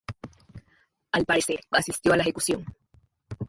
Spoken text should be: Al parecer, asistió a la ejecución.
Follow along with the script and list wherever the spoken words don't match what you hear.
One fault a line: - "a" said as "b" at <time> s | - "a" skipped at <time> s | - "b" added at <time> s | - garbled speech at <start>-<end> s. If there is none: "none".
none